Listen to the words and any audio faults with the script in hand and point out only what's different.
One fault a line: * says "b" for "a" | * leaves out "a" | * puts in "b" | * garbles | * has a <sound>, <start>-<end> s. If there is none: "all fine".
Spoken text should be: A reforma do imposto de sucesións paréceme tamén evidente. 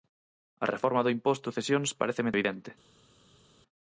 * leaves out "de"
* leaves out "tamén"